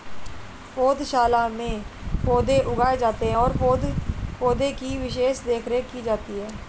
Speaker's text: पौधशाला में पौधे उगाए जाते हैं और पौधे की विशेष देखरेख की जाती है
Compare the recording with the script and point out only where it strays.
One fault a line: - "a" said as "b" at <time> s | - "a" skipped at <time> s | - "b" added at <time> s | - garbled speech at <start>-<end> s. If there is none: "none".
none